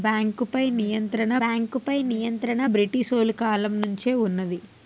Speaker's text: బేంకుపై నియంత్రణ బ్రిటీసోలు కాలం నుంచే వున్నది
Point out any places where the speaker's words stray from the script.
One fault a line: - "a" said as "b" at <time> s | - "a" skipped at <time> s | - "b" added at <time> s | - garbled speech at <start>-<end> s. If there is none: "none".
- "బేంకుపై నియంత్రణ" added at 1.4 s